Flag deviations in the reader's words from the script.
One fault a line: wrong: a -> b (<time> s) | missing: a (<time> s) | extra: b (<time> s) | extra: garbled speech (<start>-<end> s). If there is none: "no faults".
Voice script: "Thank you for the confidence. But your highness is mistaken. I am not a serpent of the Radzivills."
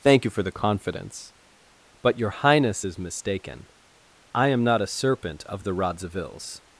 no faults